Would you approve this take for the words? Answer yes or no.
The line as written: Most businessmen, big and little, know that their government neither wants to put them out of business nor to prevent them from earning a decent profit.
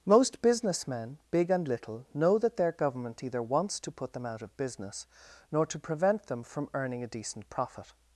no